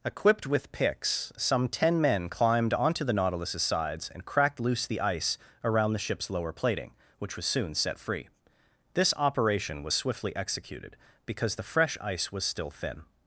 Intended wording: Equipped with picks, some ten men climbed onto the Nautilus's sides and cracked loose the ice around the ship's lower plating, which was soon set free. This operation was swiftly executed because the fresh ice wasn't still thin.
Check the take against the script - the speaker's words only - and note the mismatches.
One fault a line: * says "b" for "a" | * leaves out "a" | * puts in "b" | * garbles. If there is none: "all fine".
* says "was" for "wasn't"